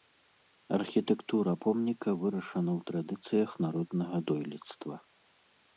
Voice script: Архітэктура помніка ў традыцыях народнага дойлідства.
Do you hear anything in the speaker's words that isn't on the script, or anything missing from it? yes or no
yes